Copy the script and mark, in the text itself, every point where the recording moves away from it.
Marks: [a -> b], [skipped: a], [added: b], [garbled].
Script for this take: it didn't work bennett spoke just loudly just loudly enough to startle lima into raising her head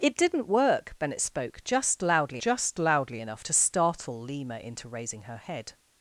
it didn't work bennett spoke just loudly just loudly enough to startle lima into raising her head